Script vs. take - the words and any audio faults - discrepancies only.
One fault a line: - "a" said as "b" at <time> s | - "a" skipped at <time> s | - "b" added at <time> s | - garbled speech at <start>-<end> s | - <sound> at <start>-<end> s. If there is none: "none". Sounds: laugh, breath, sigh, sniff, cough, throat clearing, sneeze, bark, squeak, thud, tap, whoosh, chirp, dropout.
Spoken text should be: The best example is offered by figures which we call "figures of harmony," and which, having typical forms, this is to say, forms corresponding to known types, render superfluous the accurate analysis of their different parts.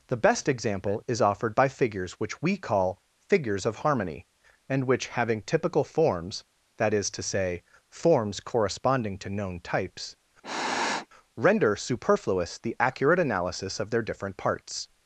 - "this" said as "that" at 6.8 s
- sniff at 10.4-11.1 s